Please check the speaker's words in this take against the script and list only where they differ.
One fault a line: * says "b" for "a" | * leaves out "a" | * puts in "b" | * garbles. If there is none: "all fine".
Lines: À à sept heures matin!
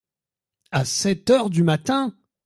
* leaves out "à"
* puts in "du"